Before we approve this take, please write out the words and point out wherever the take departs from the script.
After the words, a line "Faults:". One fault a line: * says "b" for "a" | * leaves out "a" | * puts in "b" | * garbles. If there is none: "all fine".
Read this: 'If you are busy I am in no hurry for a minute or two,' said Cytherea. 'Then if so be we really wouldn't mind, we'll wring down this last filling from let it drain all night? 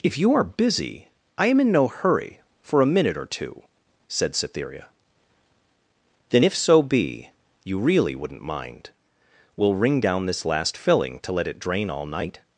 'If you are busy I am in no hurry for a minute or two,' said Cytherea. 'Then if so be you really wouldn't mind, we'll wring down this last filling to let it drain all night?
Faults:
* says "you" for "we"
* says "to" for "from"